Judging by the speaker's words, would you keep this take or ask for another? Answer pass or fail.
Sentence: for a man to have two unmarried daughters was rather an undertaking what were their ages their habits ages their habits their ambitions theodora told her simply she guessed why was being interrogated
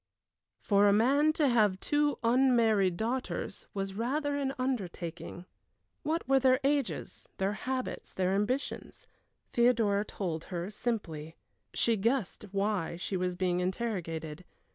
fail